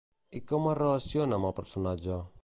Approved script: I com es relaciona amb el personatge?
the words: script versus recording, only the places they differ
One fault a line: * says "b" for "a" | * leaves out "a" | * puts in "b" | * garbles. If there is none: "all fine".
all fine